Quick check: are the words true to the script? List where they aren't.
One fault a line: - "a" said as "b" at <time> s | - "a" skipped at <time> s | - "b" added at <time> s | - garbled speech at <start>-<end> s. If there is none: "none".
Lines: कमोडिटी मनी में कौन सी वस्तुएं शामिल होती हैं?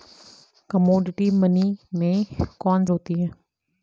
- "सी वस्तुएं शामिल" skipped at 2.9 s